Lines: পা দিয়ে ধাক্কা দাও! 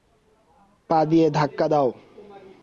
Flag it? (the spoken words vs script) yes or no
no